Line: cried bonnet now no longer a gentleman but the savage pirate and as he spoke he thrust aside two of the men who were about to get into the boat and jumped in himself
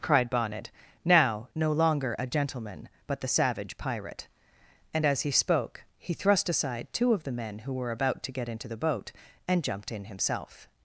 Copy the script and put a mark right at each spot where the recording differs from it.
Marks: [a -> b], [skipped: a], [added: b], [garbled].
cried bonnet now no longer a gentleman but the savage pirate and as he spoke he thrust aside two of the men who were about to get into the boat and jumped in himself